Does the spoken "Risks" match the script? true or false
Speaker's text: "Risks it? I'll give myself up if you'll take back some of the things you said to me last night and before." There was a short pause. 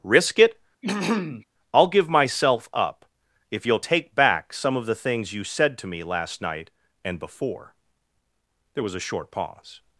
false